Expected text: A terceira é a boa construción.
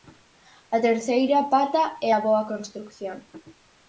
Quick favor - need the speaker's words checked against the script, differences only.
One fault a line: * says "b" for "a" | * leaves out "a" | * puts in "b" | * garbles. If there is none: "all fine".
* puts in "pata"